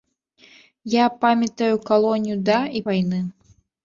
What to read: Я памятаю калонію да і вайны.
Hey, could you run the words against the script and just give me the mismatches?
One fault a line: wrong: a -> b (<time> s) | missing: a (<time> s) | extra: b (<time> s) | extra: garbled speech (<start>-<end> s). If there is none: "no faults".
no faults